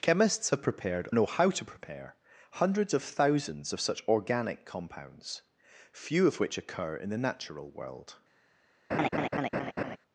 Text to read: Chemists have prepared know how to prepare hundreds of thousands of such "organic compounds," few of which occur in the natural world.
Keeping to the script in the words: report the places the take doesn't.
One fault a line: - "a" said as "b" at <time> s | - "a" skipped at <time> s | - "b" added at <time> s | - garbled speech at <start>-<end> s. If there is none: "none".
none